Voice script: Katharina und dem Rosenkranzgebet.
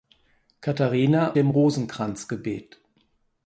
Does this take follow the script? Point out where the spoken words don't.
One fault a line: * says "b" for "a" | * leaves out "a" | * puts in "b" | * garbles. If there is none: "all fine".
* leaves out "und"